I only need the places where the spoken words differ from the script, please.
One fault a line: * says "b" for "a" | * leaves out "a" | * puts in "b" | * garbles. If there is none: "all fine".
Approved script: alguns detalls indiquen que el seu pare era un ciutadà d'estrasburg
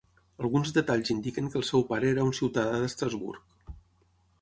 all fine